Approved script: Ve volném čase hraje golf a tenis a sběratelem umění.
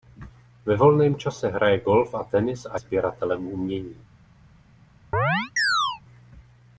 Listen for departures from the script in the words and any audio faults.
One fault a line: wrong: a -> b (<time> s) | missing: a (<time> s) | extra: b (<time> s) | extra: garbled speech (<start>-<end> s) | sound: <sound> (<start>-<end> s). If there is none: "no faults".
sound: chirp (5.1-6.0 s)